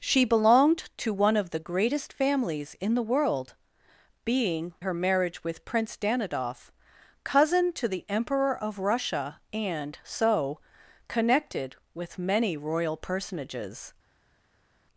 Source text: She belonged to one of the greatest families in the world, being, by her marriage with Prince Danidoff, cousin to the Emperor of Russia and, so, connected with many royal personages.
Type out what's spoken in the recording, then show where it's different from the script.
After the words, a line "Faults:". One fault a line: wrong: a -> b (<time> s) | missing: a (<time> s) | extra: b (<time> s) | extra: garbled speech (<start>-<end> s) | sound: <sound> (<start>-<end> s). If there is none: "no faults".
She belonged to one of the greatest families in the world, being, her marriage with Prince Danidoff, cousin to the Emperor of Russia and, so, connected with many royal personages.
Faults:
missing: by (4.7 s)